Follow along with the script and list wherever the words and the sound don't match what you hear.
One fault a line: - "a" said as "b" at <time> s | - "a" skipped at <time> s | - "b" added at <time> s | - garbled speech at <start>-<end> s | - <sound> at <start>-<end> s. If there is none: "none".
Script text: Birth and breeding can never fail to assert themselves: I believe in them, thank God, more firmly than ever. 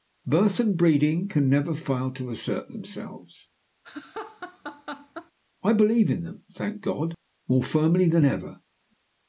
- laugh at 3.8-5.3 s